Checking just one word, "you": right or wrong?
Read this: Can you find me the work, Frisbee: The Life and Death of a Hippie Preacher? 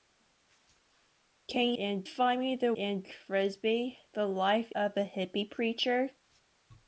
wrong